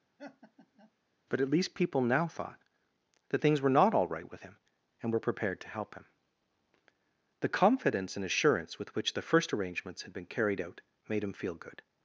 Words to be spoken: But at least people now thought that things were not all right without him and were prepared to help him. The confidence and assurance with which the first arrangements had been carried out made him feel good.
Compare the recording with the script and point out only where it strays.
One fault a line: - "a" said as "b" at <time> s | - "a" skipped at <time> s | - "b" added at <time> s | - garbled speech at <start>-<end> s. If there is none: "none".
- "without" said as "with" at 4.3 s